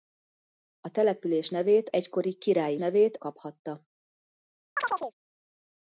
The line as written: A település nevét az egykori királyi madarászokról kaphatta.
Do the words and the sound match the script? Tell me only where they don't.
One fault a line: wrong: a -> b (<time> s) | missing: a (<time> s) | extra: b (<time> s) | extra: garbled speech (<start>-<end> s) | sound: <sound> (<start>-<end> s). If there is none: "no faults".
missing: az (1.9 s)
wrong: madarászokról -> nevét (2.7 s)
sound: chirp (4.8-5.1 s)